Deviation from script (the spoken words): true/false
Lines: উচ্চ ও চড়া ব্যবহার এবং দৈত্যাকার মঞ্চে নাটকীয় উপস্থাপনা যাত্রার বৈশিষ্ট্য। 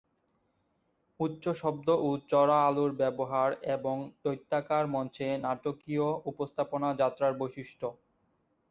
true